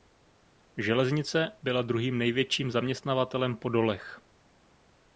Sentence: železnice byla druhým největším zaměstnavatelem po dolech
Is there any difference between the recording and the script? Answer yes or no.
no